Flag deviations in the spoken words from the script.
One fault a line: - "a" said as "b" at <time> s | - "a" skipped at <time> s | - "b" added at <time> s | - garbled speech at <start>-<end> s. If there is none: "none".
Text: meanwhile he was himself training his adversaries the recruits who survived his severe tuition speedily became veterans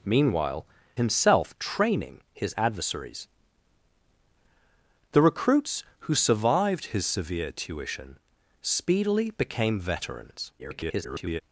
- "he was" skipped at 0.7 s
- garbled speech at 10.6-11.4 s